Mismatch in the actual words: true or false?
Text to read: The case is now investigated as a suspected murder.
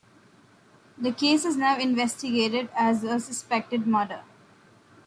false